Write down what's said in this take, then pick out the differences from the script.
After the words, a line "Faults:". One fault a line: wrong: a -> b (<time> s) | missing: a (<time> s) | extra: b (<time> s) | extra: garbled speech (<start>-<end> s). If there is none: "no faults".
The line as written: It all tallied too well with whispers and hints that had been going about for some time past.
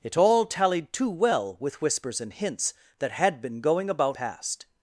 It all tallied too well with whispers and hints that had been going about past.
Faults:
missing: for some time (4.2 s)